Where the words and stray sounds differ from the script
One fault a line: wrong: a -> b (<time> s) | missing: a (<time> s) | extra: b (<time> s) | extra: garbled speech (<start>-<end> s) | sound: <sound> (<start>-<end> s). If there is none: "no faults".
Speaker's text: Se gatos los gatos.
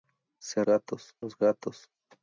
no faults